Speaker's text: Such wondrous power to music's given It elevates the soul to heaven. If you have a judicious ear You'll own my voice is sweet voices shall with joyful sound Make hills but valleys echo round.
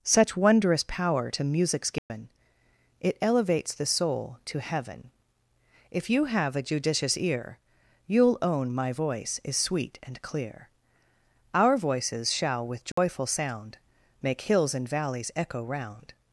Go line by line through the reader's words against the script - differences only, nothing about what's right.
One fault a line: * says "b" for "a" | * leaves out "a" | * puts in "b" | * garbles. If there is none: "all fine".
* puts in "and clear Our"
* says "and" for "but"